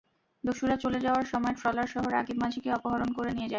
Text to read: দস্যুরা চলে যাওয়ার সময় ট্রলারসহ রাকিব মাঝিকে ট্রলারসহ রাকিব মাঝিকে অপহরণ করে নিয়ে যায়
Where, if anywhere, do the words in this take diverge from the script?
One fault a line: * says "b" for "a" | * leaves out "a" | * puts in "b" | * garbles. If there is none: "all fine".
* leaves out "ট্রলারসহ রাকিব মাঝিকে"